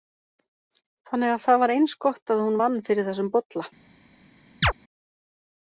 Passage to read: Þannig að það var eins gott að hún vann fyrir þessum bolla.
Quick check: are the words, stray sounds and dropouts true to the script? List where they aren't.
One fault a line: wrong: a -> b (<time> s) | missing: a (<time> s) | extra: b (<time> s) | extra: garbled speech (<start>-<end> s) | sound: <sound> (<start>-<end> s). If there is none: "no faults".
sound: chirp (4.6-4.7 s)